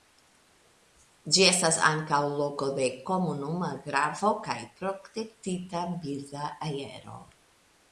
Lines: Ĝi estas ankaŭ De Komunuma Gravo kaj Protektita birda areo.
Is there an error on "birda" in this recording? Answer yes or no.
no